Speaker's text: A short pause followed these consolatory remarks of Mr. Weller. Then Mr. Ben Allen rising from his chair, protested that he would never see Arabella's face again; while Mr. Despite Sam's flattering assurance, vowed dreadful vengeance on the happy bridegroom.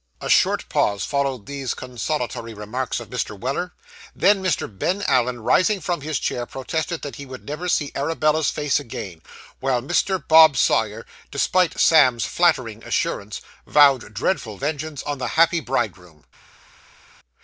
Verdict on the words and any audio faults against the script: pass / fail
fail